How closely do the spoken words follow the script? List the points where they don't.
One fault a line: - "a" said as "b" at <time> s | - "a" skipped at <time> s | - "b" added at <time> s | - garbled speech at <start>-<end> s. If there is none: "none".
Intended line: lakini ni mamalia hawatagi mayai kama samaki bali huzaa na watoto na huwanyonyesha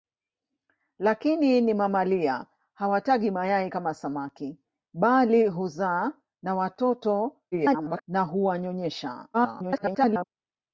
- garbled speech at 7.5-8.0 s
- garbled speech at 9.3-10.2 s